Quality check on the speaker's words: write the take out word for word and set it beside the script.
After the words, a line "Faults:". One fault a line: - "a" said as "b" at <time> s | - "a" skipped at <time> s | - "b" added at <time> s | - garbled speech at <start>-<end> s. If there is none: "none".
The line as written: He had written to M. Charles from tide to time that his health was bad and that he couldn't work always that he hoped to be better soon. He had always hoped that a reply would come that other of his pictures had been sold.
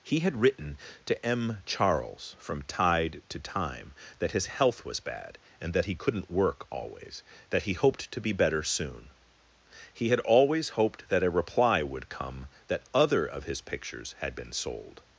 He had written to M. Charles from tide to time that his health was bad and that he couldn't work always that he hoped to be better soon. He had always hoped that a reply would come that other of his pictures had been sold.
Faults:
none